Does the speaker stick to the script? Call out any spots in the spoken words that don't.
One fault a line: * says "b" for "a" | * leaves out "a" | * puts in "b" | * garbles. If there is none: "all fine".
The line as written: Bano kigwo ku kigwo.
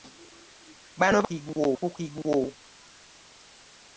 all fine